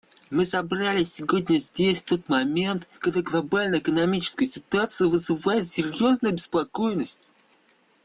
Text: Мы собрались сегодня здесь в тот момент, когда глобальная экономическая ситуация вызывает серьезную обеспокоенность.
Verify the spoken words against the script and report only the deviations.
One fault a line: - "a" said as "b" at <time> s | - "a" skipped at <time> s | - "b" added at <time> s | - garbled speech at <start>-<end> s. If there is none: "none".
none